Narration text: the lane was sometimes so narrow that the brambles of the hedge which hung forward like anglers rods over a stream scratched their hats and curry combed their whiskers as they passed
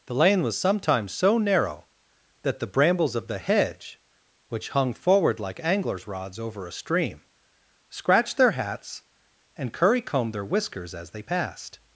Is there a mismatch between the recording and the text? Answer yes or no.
no